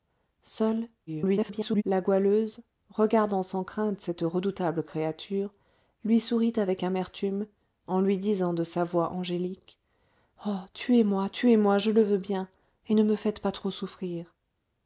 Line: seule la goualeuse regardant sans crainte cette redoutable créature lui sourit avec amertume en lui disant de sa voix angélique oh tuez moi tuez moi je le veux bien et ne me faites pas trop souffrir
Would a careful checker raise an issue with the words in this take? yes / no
yes